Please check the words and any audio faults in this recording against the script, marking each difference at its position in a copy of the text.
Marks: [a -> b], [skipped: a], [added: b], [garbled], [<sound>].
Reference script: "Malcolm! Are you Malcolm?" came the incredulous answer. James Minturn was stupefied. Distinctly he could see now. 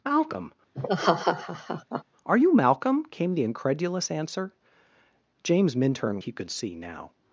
"Malcolm! [laugh] Are you Malcolm?" came the incredulous answer. James Minturn [skipped: was stupefied. Distinctly] he could see now.